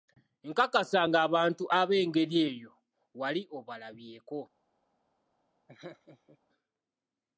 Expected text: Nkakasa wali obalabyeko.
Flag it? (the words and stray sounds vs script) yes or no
yes